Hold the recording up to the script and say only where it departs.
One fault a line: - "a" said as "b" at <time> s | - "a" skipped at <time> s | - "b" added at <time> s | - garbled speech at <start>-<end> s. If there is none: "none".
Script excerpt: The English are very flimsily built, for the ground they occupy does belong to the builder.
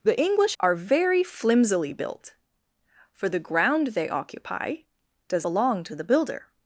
none